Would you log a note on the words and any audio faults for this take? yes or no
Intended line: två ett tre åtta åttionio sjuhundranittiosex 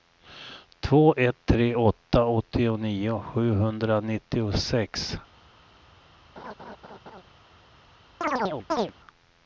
yes